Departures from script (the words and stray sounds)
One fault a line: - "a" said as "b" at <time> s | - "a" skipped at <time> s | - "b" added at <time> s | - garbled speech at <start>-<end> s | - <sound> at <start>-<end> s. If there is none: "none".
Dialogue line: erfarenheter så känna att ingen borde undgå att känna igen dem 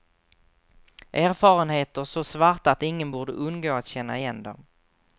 - "känna" said as "svarta" at 2.2 s